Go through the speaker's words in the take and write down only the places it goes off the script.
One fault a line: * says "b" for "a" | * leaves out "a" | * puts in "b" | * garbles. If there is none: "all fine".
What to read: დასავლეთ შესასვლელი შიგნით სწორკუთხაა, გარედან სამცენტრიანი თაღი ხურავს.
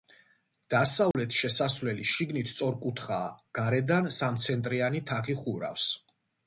all fine